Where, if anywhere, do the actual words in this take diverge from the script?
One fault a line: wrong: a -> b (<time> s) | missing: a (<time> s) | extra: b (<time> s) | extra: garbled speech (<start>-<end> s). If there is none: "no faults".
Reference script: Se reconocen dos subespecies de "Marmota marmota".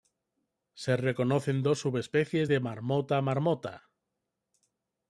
no faults